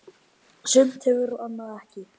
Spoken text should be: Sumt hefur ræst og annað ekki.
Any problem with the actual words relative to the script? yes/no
yes